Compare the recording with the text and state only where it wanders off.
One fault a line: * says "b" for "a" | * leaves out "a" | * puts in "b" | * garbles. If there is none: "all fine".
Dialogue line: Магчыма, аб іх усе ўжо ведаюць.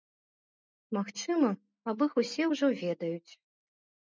all fine